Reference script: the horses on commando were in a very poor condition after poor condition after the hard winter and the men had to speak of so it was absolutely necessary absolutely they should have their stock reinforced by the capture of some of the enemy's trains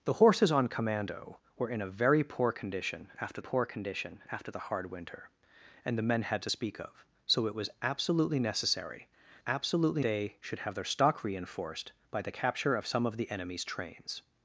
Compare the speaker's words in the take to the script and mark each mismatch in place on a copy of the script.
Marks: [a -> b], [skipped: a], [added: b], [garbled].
the horses on commando were in a very poor condition after poor condition after the hard winter and the men had to speak of so it was absolutely necessary absolutely they should have their stock reinforced by the capture of some of the enemy's trains